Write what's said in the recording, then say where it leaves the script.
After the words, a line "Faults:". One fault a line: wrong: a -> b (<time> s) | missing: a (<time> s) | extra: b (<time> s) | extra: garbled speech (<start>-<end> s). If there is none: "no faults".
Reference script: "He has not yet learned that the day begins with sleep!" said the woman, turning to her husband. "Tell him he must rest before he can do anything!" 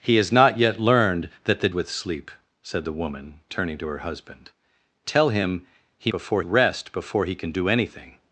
"He has not yet learned that the with sleep!" said the woman, turning to her husband. "Tell him he before rest before he can do anything!"
Faults:
missing: day begins (1.7 s)
wrong: must -> before (6.1 s)